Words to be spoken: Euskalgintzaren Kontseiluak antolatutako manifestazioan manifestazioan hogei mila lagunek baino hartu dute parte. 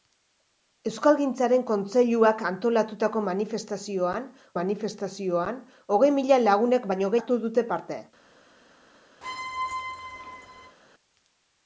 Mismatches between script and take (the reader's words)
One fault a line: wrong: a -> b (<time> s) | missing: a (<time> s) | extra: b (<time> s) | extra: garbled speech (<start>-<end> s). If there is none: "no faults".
no faults